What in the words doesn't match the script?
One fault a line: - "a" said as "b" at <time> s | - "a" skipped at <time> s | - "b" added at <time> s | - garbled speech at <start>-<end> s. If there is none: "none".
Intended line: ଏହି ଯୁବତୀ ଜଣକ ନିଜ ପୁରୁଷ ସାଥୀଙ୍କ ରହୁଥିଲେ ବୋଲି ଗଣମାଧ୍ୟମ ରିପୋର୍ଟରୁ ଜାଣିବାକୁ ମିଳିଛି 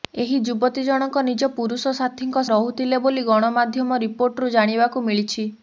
none